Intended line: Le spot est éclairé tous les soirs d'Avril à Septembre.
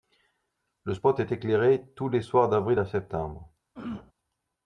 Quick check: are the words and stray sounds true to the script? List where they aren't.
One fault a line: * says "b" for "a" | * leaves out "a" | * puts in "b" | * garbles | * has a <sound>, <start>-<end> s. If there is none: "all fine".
* has a throat clearing, 3.7-4.1 s